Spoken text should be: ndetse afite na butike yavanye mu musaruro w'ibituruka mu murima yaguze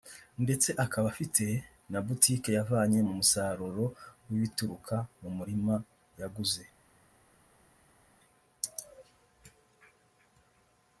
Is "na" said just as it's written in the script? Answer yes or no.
yes